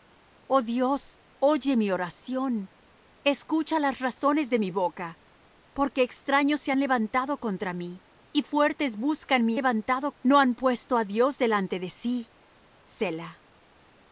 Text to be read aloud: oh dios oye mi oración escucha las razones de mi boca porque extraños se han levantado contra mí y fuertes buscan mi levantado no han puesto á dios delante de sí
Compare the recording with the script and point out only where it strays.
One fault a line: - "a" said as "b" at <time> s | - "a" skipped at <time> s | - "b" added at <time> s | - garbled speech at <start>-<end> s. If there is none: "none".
none